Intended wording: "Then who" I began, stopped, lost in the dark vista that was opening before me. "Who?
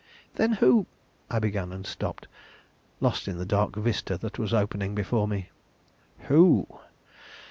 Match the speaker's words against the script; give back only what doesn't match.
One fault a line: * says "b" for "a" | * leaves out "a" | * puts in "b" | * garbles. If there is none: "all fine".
* puts in "and"